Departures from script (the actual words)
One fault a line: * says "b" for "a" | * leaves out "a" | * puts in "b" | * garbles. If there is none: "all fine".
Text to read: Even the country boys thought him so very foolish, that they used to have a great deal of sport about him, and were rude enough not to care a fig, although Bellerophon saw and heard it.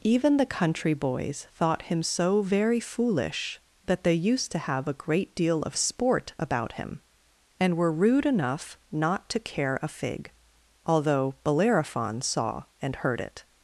all fine